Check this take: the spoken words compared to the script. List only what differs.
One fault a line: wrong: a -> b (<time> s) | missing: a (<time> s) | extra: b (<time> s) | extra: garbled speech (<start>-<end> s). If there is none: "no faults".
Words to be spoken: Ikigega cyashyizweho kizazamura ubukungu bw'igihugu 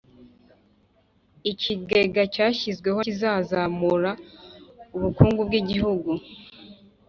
no faults